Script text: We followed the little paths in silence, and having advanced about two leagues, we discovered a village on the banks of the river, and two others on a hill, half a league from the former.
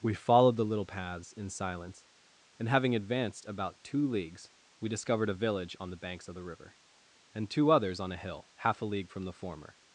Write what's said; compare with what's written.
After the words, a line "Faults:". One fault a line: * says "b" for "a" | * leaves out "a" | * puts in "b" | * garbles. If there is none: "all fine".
We followed the little paths in silence, and having advanced about two leagues, we discovered a village on the banks of the river, and two others on a hill, half a league from the former.
Faults:
all fine